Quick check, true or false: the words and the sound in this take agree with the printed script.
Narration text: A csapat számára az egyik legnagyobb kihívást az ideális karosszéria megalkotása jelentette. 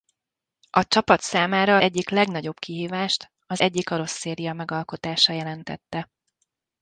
false